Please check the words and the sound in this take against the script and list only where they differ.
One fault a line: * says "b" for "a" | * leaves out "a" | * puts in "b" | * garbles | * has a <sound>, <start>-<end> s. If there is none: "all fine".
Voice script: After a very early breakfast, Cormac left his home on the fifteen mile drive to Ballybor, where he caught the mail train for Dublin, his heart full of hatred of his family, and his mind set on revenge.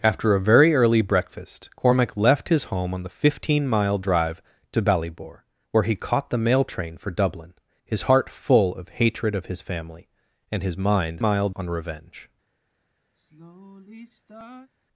* says "mile" for "set"
* has a sigh, 13.1-14.7 s